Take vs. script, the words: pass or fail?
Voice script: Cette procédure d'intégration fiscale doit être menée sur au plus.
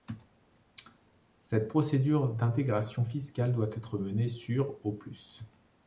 pass